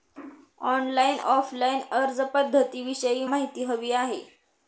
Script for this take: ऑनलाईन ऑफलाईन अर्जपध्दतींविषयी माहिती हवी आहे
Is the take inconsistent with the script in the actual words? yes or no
no